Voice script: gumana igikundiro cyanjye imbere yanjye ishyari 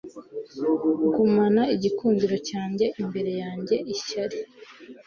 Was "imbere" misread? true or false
false